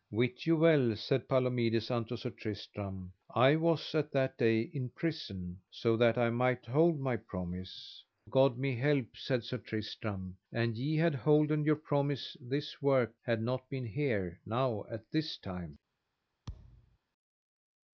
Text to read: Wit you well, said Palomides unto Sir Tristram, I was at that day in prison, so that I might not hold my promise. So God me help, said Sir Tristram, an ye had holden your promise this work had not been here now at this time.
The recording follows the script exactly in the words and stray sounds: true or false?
false